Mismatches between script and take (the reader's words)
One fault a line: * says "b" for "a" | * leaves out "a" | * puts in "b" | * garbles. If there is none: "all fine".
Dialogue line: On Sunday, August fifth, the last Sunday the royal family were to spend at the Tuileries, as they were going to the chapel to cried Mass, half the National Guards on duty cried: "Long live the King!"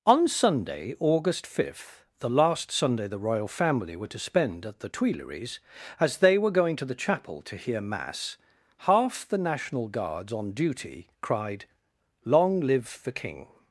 * says "hear" for "cried"